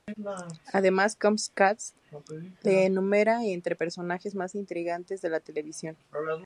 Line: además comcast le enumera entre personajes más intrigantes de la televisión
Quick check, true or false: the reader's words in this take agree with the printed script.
true